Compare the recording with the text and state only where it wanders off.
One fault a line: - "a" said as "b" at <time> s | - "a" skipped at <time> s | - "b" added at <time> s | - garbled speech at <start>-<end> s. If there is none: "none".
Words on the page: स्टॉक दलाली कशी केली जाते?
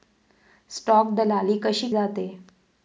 - "केली" skipped at 1.9 s